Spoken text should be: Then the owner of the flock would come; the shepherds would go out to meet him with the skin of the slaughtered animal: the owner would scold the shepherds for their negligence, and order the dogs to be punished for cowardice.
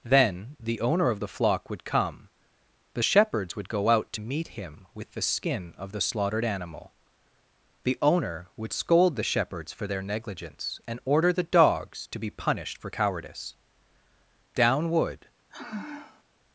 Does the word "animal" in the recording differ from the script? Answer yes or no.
no